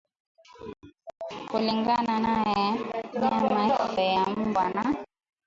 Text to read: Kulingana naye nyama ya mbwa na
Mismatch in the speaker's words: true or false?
false